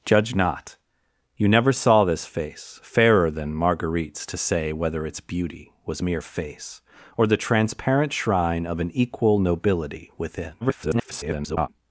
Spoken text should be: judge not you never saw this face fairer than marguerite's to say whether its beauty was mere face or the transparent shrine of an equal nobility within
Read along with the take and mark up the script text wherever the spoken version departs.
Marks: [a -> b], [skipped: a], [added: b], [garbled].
judge not you never saw this face fairer than marguerite's to say whether its beauty was mere face or the transparent shrine of an equal nobility within [garbled]